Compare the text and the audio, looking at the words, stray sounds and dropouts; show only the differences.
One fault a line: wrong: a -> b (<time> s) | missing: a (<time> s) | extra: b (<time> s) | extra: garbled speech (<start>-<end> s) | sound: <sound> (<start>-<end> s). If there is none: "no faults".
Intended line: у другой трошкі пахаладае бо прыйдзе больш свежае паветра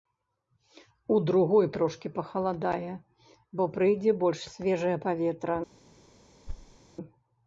sound: thud (6.5-6.8 s)